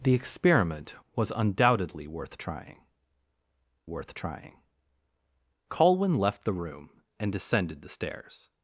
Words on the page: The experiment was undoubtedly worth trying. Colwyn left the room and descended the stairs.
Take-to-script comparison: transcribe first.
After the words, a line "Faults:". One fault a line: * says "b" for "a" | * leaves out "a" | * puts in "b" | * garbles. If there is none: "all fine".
The experiment was undoubtedly worth trying worth trying. Colwyn left the room and descended the stairs.
Faults:
* puts in "worth trying"